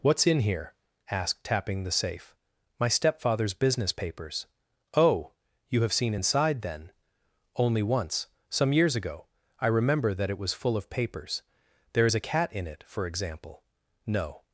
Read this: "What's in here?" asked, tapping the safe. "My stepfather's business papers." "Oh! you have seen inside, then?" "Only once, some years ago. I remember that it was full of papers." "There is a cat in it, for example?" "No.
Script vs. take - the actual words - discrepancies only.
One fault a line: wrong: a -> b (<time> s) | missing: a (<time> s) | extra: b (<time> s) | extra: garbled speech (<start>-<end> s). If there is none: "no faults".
no faults